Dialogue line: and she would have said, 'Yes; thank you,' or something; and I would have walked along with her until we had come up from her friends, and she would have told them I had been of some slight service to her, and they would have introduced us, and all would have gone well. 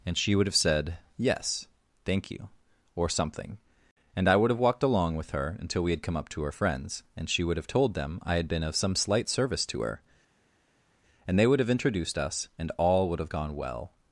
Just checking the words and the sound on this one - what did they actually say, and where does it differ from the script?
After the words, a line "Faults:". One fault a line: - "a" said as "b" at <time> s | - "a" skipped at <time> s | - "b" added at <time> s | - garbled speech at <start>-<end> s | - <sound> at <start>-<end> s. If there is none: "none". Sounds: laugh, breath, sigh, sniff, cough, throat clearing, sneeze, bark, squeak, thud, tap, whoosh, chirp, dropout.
and she would have said, 'Yes; thank you,' or something; and I would have walked along with her until we had come up to her friends, and she would have told them I had been of some slight service to her, and they would have introduced us, and all would have gone well.
Faults:
- "from" said as "to" at 6.3 s